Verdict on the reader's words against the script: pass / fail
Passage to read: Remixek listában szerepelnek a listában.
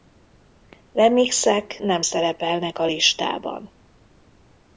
fail